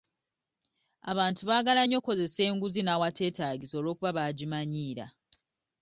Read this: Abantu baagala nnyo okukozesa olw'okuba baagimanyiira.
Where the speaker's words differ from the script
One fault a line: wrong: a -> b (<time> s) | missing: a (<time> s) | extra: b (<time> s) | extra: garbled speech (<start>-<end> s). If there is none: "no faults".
extra: enguzi n'awateetaagisa (2.5 s)